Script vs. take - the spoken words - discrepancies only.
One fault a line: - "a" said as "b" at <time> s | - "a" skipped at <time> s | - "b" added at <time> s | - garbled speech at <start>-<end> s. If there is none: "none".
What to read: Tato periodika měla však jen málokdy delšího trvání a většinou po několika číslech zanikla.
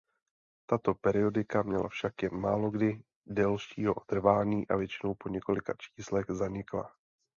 none